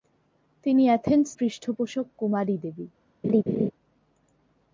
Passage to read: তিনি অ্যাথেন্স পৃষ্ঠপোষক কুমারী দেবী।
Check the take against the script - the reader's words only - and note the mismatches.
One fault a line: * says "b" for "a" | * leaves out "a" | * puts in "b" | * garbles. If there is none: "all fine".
all fine